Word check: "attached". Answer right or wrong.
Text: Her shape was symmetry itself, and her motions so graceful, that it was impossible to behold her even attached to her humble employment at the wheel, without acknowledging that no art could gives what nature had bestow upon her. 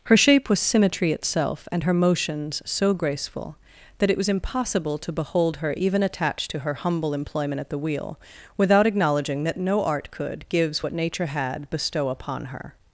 right